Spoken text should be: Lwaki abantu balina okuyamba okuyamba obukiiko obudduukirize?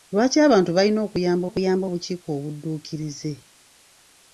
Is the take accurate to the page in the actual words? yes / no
yes